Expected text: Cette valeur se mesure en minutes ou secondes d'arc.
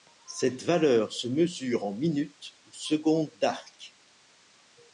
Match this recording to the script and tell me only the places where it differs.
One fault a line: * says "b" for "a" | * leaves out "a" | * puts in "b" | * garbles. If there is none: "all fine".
all fine